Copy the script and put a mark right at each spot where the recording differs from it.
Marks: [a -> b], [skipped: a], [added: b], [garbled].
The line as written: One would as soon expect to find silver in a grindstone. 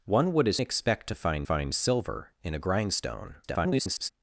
One would as [skipped: soon] expect to find [added: find] silver in a grindstone. [garbled]